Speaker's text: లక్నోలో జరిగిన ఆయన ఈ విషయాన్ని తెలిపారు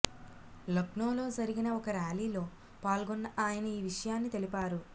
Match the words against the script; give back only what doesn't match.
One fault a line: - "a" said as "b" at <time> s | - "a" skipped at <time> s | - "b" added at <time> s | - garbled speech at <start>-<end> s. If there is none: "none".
- "ఒక ర్యాలీలో పాల్గొన్న" added at 1.7 s